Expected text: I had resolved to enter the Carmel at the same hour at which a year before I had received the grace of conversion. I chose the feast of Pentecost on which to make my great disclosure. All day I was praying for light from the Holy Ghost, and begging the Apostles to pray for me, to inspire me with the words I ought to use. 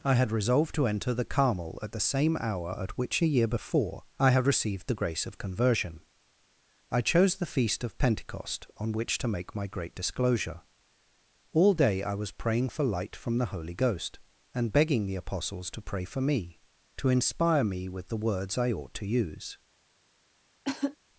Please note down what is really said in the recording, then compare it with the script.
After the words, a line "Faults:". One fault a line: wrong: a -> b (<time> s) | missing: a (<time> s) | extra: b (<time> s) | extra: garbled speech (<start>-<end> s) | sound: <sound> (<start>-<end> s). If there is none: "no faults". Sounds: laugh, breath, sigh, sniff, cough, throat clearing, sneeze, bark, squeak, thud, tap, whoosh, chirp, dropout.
I had resolved to enter the Carmel at the same hour at which a year before I had received the grace of conversion. I chose the feast of Pentecost on which to make my great disclosure. All day I was praying for light from the Holy Ghost, and begging the Apostles to pray for me, to inspire me with the words I ought to use.
Faults:
sound: cough (20.6-21.0 s)